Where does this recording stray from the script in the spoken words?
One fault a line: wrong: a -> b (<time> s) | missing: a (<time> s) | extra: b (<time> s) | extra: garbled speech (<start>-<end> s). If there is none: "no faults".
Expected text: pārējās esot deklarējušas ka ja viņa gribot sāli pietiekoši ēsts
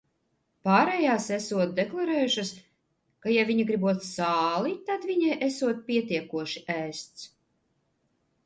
extra: tad viņai esot (4.9 s)